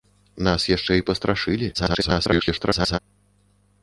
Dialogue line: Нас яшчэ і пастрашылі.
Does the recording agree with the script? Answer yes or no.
no